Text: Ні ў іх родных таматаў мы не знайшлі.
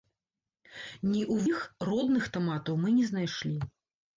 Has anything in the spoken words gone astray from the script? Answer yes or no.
no